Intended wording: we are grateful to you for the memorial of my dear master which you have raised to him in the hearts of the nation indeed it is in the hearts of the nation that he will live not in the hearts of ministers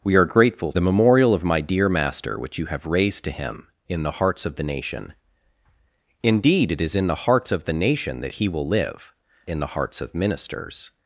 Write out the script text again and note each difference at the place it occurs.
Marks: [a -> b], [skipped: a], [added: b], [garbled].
we are grateful [skipped: to you for] the memorial of my dear master which you have raised to him in the hearts of the nation indeed it is in the hearts of the nation that he will live [skipped: not] in the hearts of ministers